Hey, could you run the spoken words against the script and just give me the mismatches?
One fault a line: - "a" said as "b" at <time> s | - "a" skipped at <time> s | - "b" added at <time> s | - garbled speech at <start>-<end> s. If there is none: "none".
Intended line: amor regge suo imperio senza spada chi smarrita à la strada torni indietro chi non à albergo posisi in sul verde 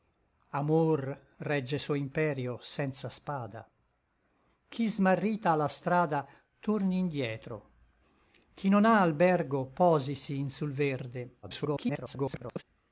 - garbled speech at 11.4-12.6 s